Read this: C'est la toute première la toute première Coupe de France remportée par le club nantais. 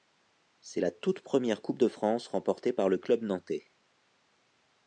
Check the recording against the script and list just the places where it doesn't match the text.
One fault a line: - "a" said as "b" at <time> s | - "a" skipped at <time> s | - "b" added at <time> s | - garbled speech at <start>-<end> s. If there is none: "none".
- "la toute première" skipped at 1.6 s